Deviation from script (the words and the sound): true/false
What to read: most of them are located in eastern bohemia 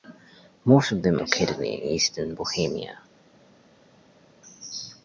true